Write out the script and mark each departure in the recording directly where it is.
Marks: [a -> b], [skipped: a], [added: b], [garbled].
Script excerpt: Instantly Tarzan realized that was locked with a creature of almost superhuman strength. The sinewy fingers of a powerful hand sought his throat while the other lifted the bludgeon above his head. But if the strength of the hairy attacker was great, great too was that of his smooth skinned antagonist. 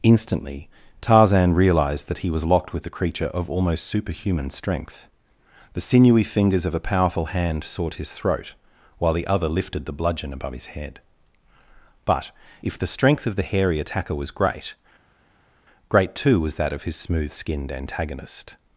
Instantly Tarzan realized that [added: he] was locked with a creature of almost superhuman strength. The sinewy fingers of a powerful hand sought his throat while the other lifted the bludgeon above his head. But if the strength of the hairy attacker was great, great too was that of his smooth skinned antagonist.